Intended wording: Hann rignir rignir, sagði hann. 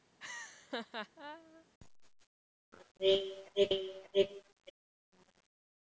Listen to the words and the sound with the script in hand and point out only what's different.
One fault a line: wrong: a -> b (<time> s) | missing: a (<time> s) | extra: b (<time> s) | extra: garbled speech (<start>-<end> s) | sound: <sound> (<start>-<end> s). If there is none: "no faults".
sound: laugh (0.2-1.7 s)